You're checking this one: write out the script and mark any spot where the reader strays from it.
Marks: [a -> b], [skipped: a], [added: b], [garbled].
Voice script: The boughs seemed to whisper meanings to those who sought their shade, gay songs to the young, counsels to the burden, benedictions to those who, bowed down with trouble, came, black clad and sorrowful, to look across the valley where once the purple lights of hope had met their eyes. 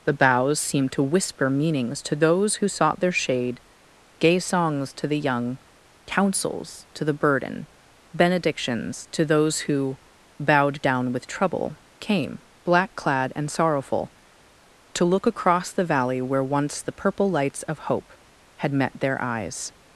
The boughs seemed to whisper meanings to those who sought their shade, gay songs to the young, counsels to the burden, benedictions to those who, bowed down with trouble, came, black clad and sorrowful, to look across the valley where once the purple lights of hope had met their eyes.